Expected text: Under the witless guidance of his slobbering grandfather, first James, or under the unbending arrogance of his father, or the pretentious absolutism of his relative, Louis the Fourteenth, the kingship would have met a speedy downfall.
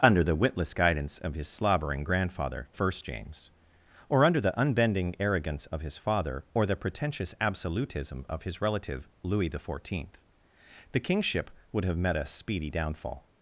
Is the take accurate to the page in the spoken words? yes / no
yes